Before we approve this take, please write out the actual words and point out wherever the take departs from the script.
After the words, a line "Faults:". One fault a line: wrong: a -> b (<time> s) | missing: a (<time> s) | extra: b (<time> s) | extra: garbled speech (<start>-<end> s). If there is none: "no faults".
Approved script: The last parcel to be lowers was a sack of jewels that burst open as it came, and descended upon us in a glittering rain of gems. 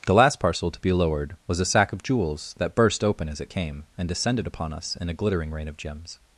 The last parcel to be lowered was a sack of jewels that burst open as it came, and descended upon us in a glittering rain of gems.
Faults:
wrong: lowers -> lowered (0.9 s)